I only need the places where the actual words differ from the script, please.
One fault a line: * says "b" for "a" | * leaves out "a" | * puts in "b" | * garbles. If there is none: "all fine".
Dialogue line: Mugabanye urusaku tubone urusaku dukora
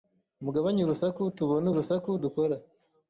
all fine